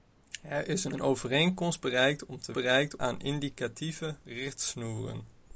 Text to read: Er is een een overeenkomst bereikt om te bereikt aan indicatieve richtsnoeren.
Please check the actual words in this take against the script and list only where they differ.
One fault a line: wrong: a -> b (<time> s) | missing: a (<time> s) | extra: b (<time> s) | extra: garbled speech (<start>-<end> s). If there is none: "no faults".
no faults